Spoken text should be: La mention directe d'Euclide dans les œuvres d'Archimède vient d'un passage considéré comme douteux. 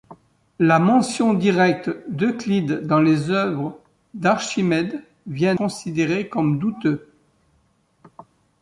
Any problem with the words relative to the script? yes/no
yes